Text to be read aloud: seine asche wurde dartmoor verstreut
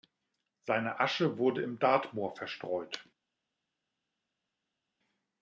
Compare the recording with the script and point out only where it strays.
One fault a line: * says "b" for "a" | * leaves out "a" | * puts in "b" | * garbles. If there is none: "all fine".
* puts in "im"